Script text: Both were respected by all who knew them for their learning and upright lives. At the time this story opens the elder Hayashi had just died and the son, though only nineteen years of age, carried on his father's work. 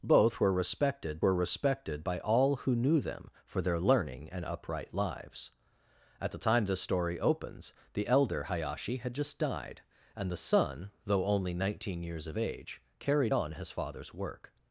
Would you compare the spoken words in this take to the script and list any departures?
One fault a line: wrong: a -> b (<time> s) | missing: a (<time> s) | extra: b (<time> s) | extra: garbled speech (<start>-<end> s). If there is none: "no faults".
extra: were respected (1.2 s)